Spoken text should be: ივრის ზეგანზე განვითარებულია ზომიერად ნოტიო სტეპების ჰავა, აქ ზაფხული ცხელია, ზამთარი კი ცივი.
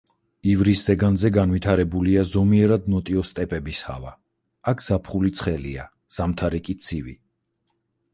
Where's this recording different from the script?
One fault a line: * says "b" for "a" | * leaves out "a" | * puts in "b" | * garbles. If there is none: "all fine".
all fine